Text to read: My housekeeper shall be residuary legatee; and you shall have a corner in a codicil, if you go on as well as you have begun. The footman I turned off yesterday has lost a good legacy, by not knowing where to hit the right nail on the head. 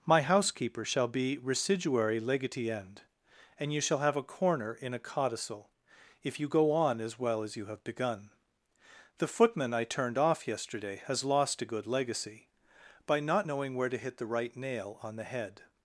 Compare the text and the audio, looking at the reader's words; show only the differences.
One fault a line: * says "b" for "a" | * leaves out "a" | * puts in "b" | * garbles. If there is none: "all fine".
* puts in "end"